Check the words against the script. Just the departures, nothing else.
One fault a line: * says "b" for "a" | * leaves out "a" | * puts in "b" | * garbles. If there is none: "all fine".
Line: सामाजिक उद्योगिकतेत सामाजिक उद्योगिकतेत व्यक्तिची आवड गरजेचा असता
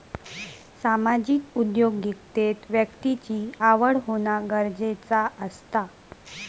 * leaves out "सामाजिक उद्योगिकतेत"
* puts in "होना"